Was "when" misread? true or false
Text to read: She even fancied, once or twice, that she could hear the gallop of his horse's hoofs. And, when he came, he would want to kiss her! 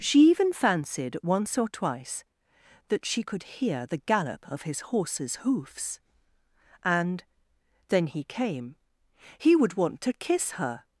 true